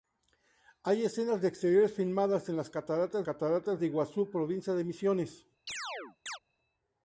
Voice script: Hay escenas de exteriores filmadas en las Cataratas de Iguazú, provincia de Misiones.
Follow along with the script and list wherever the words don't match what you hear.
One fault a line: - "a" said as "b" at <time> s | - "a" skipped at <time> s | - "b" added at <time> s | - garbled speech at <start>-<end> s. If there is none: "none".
- "Cataratas" added at 3.2 s